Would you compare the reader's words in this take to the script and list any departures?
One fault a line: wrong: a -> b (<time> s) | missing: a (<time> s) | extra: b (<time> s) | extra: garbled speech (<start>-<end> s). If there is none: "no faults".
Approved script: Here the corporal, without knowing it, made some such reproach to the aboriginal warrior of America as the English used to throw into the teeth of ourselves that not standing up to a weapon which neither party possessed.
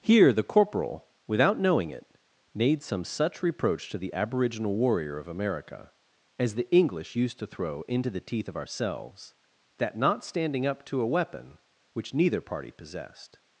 no faults